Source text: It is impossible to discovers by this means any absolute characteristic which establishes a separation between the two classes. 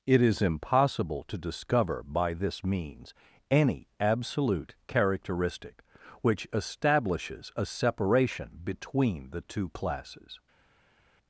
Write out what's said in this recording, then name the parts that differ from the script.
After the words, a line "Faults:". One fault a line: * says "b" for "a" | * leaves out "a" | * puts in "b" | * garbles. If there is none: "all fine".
It is impossible to discover by this means any absolute characteristic which establishes a separation between the two classes.
Faults:
* says "discover" for "discovers"